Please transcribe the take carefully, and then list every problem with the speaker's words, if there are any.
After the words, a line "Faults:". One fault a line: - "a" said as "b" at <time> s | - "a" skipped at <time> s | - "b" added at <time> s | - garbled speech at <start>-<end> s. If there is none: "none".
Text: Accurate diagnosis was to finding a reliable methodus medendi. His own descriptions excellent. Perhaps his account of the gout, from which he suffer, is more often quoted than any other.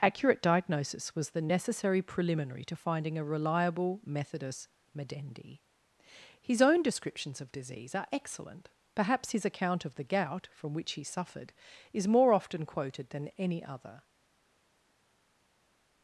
Accurate diagnosis was the necessary preliminary to finding a reliable methodus medendi. His own descriptions of disease are excellent. Perhaps his account of the gout, from which he suffered, is more often quoted than any other.
Faults:
- "the necessary preliminary" added at 1.3 s
- "of disease are" added at 7.4 s
- "suffer" said as "suffered" at 11.0 s